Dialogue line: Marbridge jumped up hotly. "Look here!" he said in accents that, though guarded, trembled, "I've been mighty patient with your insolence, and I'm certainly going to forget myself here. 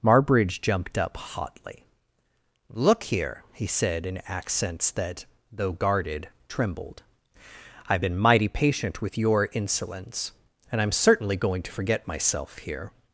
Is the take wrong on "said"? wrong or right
right